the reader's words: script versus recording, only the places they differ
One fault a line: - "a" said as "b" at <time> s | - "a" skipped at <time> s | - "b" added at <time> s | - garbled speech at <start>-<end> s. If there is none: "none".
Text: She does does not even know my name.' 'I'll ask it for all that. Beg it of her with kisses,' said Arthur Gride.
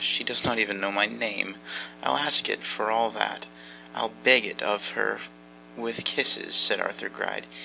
- "does" skipped at 0.4 s
- "I'll" added at 3.9 s